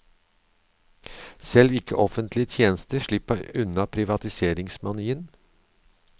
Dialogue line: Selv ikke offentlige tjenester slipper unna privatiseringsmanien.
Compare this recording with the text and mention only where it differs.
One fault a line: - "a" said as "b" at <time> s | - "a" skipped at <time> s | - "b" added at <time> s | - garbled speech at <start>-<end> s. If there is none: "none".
none